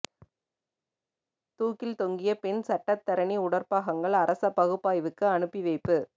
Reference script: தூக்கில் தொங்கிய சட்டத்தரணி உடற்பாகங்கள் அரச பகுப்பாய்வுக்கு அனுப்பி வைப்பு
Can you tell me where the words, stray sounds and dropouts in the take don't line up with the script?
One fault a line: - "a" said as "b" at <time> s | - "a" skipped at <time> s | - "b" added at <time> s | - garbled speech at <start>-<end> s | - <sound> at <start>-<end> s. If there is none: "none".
- "பெண்" added at 2.4 s